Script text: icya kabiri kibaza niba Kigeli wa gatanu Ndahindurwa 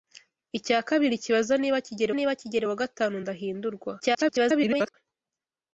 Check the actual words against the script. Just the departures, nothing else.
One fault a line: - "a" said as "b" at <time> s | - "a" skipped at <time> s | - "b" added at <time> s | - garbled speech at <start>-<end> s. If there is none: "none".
- "niba Kigeli" added at 2.2 s
- garbled speech at 4.0-4.9 s